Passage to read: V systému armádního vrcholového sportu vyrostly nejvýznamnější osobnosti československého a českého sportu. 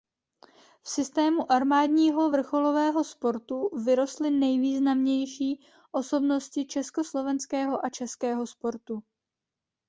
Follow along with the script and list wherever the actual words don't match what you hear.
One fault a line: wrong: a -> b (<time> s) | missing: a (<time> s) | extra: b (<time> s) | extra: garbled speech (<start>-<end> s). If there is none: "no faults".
no faults